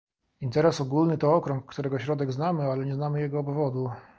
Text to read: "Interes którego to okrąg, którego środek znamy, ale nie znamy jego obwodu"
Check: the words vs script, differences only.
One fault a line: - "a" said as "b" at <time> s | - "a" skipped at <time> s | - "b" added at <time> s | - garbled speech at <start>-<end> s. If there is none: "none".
- "którego" said as "ogólny" at 0.8 s